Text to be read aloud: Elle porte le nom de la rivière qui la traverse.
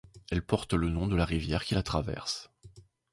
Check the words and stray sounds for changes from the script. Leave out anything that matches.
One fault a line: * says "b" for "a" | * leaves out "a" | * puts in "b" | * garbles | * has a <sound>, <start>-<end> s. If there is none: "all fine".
all fine